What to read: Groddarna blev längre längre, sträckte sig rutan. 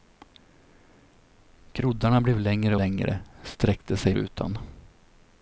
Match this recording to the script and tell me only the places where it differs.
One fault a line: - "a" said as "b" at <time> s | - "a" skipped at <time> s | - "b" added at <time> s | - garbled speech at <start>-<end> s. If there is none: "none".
none